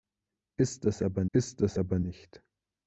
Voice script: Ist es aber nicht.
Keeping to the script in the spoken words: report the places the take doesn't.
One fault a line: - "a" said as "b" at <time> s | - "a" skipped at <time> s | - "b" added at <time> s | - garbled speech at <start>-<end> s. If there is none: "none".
- "ist es aber" added at 1.3 s